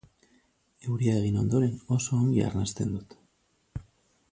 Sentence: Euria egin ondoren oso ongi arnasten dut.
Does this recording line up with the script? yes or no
yes